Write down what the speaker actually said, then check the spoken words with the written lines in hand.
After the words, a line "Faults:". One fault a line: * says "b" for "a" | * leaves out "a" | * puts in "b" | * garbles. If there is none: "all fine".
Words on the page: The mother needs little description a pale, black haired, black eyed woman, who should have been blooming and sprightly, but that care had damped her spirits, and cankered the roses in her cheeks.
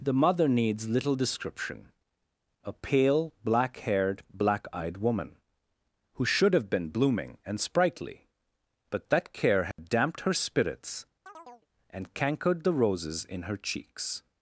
The mother needs little description a pale, black haired, black eyed woman, who should have been blooming and sprightly, but that care had damped her spirits, and cankered the roses in her cheeks.
Faults:
all fine